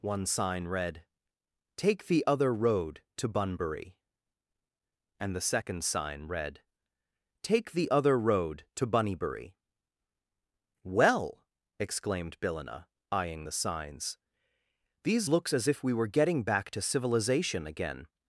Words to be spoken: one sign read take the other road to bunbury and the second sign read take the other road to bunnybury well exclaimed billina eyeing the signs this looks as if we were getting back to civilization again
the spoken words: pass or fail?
fail